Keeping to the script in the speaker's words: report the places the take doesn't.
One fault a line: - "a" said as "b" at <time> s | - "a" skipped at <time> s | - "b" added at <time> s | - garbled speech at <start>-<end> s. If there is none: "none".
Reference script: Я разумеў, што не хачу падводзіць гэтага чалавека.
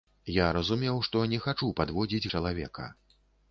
- "гэтага" skipped at 2.3 s